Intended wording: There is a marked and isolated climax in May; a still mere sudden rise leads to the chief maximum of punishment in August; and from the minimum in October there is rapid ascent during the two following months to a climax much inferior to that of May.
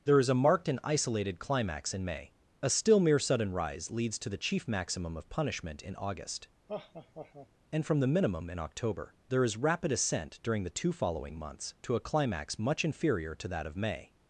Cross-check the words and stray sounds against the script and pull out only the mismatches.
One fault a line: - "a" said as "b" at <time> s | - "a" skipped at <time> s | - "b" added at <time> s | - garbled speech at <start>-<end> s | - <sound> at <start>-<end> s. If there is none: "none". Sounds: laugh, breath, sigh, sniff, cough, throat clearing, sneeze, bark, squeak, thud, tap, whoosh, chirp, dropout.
- laugh at 6.7-7.5 s